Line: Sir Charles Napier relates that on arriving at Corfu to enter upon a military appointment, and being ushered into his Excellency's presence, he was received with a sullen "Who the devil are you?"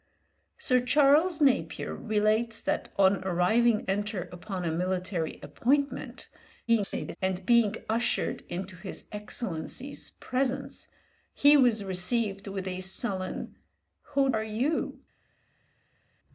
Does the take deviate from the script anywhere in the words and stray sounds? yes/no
yes